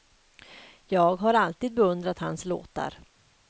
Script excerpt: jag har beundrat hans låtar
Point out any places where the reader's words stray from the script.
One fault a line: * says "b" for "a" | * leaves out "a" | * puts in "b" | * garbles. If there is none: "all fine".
* puts in "alltid"